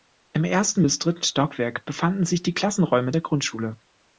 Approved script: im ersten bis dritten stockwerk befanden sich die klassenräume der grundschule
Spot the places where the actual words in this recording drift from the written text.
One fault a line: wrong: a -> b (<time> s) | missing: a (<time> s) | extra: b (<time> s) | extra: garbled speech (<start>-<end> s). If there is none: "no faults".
no faults